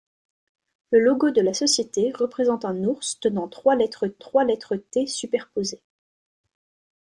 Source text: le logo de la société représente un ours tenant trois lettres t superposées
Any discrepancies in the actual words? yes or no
yes